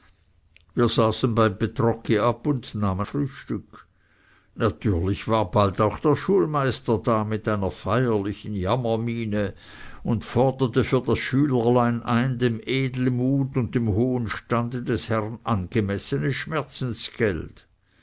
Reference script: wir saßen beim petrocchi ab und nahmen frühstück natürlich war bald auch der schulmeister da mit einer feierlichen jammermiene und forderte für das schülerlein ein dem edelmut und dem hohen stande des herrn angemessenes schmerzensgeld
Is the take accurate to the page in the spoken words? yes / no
yes